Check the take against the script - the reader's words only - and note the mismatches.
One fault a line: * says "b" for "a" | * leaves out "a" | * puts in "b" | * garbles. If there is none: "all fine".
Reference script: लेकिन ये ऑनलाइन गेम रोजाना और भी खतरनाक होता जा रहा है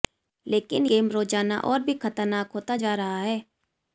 * leaves out "ये ऑनलाइन"